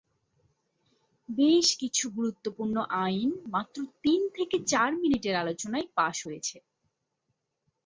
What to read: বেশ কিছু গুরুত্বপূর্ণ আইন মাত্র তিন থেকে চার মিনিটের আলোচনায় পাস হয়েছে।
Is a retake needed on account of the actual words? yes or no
no